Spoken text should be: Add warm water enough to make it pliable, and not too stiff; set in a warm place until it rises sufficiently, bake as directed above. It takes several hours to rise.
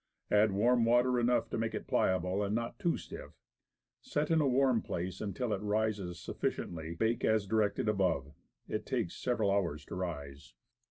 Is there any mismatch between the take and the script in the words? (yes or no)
no